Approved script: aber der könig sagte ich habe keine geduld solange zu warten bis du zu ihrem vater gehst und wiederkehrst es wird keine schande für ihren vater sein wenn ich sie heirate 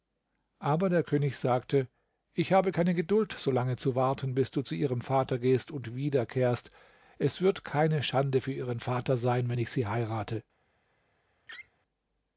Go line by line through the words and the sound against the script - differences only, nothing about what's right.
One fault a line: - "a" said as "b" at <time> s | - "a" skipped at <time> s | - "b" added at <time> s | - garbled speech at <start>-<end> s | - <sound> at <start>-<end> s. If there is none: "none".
- laugh at 11.5-11.7 s